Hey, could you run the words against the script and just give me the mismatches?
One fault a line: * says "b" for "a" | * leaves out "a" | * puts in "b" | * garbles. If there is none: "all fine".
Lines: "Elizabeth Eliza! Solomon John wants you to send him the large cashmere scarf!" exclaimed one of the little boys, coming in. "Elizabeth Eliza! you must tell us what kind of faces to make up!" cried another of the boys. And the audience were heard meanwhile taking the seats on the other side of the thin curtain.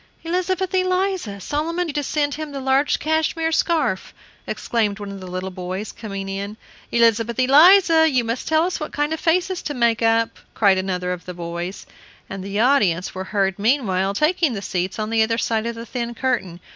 * leaves out "John wants"